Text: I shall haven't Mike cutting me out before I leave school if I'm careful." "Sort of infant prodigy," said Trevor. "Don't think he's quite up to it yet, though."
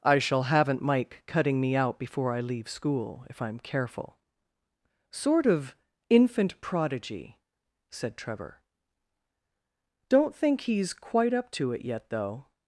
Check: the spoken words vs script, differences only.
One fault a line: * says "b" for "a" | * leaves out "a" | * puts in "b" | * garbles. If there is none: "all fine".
all fine